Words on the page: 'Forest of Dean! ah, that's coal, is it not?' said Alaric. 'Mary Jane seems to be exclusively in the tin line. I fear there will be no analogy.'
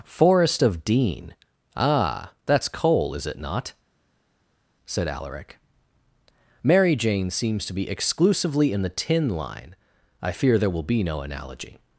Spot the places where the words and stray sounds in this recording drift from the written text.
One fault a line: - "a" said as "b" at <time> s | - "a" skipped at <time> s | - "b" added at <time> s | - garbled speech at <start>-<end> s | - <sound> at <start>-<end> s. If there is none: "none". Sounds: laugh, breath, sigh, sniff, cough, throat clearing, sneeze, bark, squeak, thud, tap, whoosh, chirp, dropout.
none